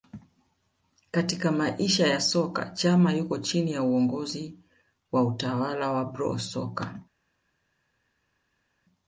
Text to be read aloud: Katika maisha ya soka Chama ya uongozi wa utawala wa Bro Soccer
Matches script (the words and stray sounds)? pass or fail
fail